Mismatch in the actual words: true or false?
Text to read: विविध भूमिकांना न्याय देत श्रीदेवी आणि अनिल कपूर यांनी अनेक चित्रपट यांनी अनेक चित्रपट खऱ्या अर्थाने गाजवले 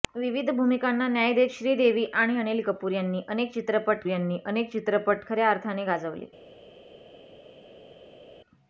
false